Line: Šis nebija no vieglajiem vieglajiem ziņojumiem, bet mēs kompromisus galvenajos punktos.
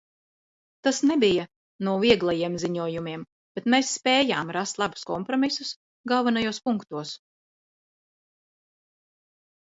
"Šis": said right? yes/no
no